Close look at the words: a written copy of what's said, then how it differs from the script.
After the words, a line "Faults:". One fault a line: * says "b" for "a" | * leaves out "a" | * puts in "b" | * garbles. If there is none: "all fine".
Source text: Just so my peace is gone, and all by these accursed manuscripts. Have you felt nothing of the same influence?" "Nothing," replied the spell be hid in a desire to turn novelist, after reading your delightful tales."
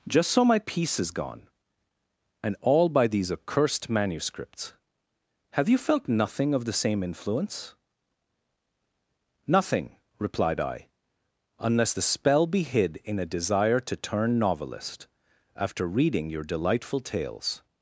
Just so my peace is gone, and all by these accursed manuscripts. Have you felt nothing of the same influence?" "Nothing," replied I, "unless the spell be hid in a desire to turn novelist, after reading your delightful tales."
Faults:
* puts in "I unless"